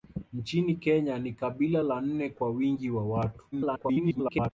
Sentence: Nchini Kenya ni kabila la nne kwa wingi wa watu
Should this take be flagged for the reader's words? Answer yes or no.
yes